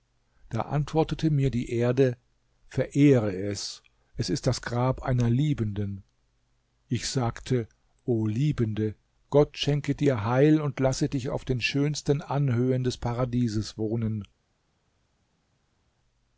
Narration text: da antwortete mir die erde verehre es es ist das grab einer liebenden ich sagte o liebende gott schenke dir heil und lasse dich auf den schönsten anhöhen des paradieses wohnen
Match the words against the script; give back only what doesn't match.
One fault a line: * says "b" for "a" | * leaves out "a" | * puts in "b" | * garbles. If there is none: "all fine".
all fine